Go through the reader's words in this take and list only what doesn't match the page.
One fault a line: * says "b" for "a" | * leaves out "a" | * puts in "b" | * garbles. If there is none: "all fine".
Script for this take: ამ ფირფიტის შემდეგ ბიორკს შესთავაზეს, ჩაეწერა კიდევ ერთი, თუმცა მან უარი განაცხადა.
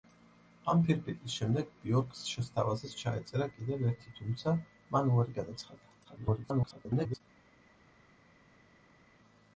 * garbles